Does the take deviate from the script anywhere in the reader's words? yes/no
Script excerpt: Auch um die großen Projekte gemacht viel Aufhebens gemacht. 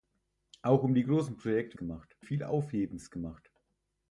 no